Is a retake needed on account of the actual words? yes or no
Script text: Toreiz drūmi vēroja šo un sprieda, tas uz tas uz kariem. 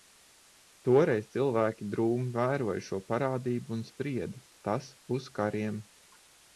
yes